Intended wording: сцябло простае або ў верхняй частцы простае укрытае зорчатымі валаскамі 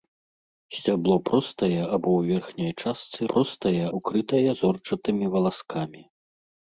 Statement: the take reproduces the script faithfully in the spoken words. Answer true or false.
true